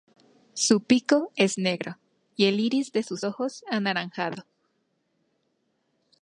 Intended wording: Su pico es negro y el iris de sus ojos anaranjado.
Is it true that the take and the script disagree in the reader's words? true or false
false